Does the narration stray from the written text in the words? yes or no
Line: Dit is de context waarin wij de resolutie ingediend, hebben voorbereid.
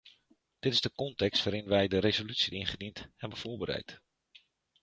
no